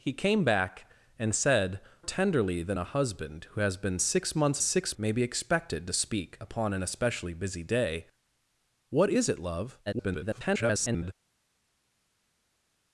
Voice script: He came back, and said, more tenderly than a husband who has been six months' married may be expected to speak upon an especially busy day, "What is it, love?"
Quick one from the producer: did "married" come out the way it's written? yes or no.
no